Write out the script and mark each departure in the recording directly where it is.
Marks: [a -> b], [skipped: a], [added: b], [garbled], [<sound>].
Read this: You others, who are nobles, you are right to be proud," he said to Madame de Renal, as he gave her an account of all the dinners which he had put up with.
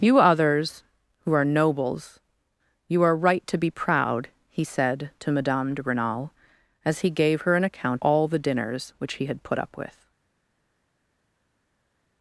You others, who are nobles, you are right to be proud," he said to Madame de Renal, as he gave her an account [skipped: of] all the dinners which he had put up with.